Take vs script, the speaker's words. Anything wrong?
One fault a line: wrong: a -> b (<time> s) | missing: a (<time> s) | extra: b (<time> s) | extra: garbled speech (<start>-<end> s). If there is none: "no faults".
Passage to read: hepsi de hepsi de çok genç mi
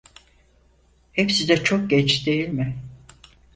missing: hepsi de (1.6 s)
extra: değil (2.2 s)